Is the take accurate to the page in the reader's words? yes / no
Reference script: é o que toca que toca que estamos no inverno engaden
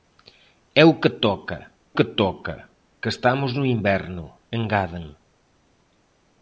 yes